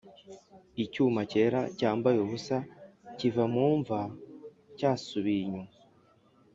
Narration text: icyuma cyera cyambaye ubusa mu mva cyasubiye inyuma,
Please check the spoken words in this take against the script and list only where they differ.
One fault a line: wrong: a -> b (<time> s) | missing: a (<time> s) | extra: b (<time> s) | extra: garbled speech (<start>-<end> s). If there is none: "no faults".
extra: kiva (3.2 s)